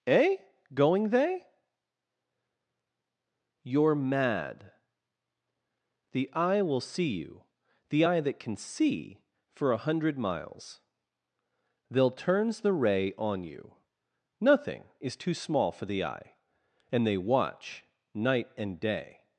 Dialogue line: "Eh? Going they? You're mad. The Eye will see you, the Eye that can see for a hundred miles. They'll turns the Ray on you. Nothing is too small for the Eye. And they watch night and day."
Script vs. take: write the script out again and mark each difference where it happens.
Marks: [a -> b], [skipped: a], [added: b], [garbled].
"Eh? Going they? You're mad. The Eye will see you, the Eye that can see for a hundred miles. They'll turns the Ray on you. Nothing is too small for the Eye. And they watch night and day."